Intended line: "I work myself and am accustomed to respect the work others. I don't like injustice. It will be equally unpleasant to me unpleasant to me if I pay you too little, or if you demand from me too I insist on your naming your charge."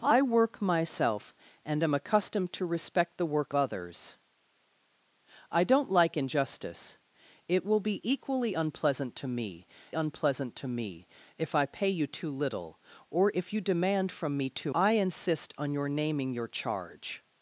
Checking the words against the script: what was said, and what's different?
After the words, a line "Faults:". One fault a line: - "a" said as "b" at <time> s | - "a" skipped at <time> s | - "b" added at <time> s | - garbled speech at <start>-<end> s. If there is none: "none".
"I work myself and am accustomed to respect the work others. I don't like injustice. It will be equally unpleasant to me unpleasant to me if I pay you too little, or if you demand from me too I insist on your naming your charge."
Faults:
none